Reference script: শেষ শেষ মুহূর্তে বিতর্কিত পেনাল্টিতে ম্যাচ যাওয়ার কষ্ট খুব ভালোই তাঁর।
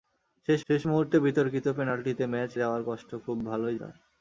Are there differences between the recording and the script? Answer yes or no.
no